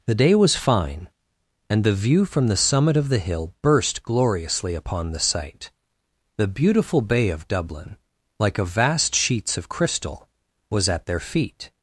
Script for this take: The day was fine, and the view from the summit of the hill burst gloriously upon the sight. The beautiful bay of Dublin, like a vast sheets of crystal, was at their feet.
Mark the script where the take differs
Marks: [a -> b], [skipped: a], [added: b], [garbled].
The day was fine, and the view from the summit of the hill burst gloriously upon the sight. The beautiful bay of Dublin, like a vast sheets of crystal, was at their feet.